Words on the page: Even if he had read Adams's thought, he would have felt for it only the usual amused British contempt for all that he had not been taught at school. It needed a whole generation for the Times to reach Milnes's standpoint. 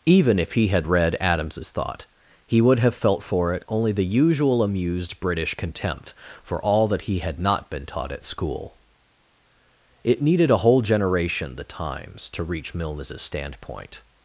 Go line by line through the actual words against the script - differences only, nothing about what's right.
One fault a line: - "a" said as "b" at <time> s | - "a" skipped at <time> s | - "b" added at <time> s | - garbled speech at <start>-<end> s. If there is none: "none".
- "for" skipped at 11.6 s